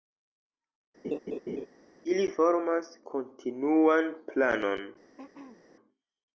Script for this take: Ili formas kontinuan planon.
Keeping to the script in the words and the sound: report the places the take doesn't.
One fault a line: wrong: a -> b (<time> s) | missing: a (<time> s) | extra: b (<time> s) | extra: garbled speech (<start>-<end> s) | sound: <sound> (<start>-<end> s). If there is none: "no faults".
sound: laugh (1.0-1.7 s)
sound: throat clearing (5.2-5.6 s)